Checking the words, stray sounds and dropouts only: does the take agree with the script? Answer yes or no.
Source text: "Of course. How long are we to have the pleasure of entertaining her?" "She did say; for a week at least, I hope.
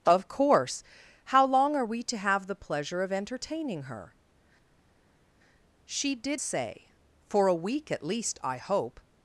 yes